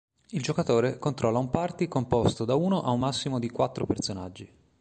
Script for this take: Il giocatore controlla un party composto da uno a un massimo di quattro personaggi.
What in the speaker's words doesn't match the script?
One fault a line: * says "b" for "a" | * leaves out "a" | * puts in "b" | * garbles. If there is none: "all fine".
all fine